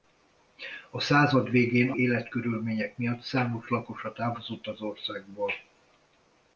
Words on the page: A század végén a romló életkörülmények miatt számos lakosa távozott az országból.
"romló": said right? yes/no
no